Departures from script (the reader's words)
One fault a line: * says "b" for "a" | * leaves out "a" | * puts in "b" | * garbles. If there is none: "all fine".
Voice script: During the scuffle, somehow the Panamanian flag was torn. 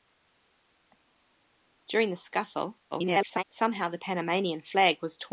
* garbles